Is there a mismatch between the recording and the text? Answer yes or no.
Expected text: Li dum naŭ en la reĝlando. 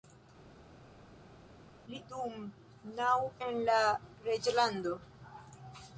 no